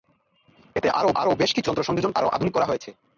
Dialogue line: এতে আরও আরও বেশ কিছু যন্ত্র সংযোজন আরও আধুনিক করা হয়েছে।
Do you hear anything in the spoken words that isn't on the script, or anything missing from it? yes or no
no